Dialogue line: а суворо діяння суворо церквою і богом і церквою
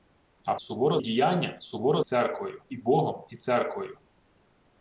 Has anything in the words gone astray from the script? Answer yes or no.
no